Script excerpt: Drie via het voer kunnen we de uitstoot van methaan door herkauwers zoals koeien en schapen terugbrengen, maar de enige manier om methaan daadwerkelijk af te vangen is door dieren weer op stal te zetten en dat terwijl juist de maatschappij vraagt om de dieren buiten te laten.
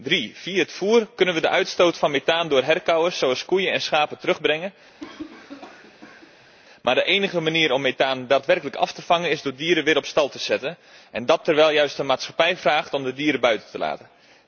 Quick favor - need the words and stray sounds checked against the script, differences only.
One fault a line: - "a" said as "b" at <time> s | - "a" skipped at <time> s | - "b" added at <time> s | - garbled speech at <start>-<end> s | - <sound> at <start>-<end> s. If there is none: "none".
- cough at 5.0-6.5 s